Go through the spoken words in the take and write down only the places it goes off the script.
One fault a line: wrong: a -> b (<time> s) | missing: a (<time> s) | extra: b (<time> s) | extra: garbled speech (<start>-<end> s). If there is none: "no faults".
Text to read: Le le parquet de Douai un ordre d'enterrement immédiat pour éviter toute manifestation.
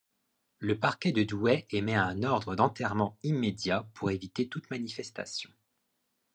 missing: le (0.8 s)
extra: émet (1.7 s)